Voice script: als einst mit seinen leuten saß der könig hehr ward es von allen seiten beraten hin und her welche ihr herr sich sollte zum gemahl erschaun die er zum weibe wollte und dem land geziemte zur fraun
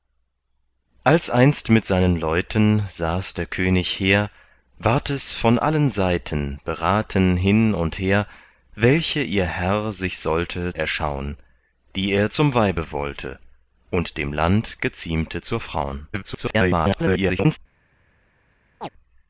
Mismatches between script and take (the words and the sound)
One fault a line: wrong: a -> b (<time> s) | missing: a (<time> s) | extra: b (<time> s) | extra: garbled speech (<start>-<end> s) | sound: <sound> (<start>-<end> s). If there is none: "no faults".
missing: zum gemahl (10.7 s)
extra: garbled speech (16.1-17.6 s)
sound: chirp (18.8-18.9 s)